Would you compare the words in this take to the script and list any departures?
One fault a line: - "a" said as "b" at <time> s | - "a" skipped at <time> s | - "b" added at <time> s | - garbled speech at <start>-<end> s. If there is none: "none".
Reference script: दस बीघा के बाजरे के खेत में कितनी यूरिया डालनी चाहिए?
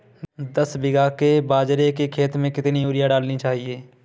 none